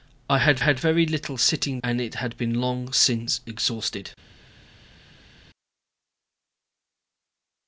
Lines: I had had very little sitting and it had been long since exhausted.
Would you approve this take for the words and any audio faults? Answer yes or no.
yes